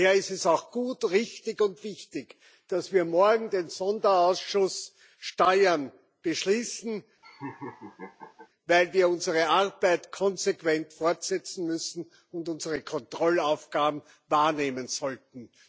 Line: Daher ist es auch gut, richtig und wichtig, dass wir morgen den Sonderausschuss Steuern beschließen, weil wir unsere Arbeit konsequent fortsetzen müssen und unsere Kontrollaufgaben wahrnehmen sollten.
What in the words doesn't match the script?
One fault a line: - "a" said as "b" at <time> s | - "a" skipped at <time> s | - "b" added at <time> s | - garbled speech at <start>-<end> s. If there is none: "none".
none